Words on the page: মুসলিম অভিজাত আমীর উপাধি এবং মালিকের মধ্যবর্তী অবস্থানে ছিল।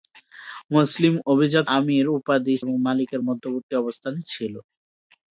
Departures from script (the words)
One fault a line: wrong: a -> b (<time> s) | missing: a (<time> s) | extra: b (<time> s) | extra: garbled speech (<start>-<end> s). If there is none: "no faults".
no faults